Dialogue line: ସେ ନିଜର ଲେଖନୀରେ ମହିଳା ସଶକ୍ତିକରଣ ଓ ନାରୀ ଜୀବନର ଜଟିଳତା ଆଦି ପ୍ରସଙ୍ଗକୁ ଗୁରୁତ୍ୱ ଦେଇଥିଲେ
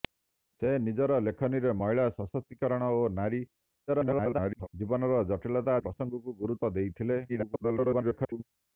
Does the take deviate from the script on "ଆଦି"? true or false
true